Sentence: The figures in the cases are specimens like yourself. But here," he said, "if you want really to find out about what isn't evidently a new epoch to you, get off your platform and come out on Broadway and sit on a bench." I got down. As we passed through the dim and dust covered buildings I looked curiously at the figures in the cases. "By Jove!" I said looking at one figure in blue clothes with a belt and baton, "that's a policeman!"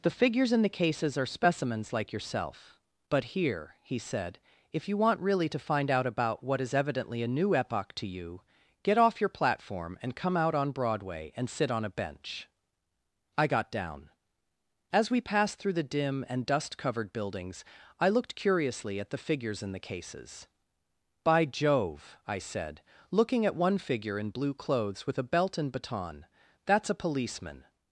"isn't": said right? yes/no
no